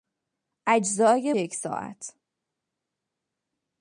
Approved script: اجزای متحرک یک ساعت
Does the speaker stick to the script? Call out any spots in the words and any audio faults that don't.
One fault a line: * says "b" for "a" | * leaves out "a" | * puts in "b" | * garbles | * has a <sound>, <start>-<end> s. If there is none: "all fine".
* leaves out "متحرک"